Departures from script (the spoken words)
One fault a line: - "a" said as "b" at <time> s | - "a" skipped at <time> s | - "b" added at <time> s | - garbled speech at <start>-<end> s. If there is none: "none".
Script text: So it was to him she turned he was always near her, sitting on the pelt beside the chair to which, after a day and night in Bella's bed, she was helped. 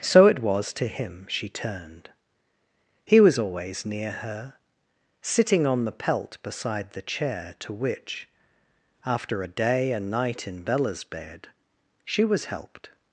none